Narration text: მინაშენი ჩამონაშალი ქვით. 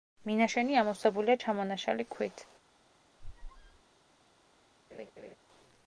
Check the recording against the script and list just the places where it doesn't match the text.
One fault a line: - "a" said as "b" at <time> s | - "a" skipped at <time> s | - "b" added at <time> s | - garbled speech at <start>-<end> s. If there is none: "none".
- "ამოვსებულია" added at 0.8 s